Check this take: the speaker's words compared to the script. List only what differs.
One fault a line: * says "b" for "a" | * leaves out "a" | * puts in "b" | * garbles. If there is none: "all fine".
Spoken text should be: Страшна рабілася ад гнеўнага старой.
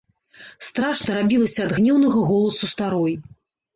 * puts in "голасу"